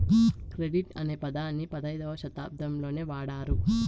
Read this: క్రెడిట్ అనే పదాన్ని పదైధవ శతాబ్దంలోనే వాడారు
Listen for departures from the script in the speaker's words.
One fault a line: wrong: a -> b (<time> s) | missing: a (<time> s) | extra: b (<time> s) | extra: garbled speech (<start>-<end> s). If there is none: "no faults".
no faults